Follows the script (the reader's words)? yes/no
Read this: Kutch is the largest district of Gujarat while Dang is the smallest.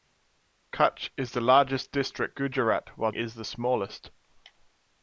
no